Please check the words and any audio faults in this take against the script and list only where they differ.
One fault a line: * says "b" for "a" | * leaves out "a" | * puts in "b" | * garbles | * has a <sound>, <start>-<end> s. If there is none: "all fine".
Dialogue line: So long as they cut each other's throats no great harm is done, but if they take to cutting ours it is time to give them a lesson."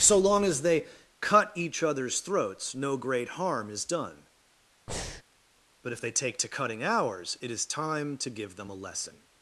* has a breath, 4.9-5.2 s